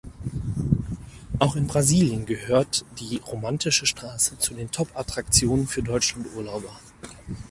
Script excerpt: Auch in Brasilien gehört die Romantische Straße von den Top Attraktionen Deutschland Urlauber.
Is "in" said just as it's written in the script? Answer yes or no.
yes